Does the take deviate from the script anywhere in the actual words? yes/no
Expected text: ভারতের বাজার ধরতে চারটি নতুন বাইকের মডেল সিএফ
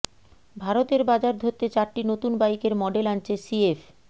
yes